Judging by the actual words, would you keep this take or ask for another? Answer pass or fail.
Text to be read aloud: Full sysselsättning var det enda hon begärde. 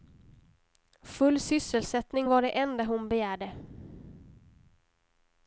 pass